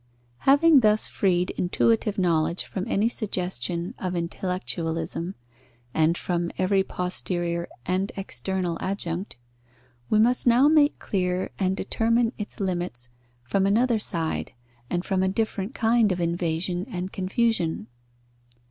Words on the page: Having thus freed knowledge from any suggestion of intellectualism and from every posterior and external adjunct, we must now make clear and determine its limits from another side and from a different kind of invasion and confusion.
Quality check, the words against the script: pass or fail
fail